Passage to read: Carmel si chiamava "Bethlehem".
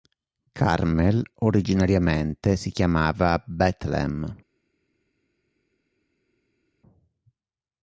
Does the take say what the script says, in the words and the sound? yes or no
no